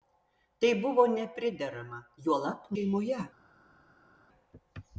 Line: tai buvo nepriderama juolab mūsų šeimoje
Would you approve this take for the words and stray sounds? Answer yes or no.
no